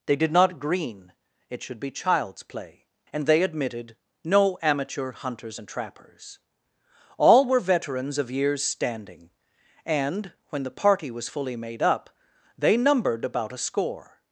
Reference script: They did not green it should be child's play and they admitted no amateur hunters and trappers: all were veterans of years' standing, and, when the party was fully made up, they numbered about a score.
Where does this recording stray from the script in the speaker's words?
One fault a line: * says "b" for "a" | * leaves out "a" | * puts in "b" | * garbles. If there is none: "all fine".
all fine